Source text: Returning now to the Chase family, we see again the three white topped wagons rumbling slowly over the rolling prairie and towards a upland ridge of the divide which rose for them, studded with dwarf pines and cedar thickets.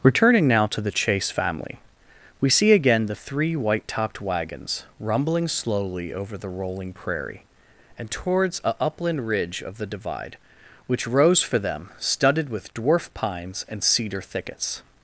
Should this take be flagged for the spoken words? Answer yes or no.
no